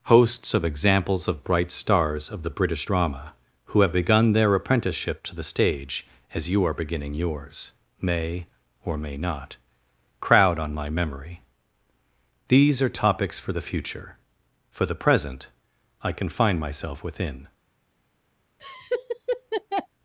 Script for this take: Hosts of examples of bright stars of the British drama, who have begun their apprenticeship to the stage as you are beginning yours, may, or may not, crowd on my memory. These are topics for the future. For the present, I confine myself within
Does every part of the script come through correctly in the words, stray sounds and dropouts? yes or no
no